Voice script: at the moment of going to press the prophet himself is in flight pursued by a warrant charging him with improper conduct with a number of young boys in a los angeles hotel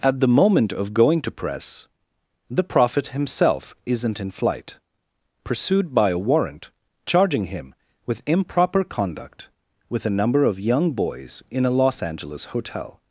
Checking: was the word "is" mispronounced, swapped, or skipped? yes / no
yes